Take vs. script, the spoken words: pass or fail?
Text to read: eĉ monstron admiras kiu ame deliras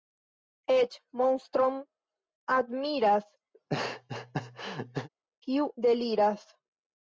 fail